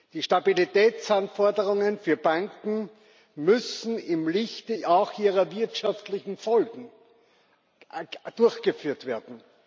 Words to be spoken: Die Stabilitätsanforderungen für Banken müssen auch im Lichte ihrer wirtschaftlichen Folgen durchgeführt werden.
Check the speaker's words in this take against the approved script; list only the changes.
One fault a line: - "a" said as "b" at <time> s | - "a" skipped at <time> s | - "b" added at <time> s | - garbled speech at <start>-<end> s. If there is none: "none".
none